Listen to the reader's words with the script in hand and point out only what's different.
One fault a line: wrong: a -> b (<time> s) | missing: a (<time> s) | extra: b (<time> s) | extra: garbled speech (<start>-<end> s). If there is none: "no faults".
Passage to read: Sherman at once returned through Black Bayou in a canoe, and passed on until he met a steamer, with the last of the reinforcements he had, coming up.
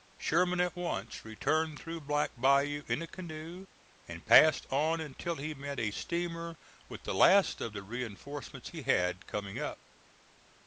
no faults